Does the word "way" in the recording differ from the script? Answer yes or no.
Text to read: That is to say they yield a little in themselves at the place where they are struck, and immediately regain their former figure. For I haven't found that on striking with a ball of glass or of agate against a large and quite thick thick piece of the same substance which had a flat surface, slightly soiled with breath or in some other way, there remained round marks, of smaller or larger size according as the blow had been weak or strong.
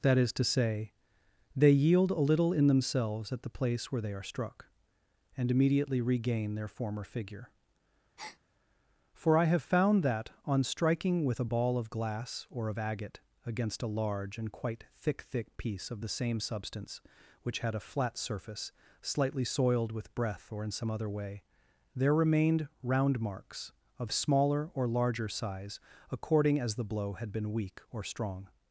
no